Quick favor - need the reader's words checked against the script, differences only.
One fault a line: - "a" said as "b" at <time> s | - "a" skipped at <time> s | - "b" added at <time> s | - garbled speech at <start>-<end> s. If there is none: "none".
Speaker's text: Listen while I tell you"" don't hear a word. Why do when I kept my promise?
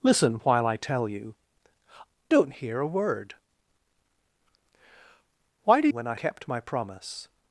none